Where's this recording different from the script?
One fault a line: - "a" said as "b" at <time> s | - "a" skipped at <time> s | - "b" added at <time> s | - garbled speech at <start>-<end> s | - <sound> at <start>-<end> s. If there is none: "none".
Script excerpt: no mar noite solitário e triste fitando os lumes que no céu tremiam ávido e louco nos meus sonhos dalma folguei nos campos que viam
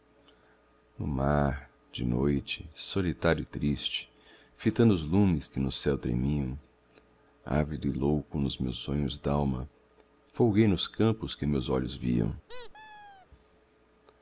- "de" added at 1.9 s
- "meus olhos" added at 11.4 s
- squeak at 12.5-13.3 s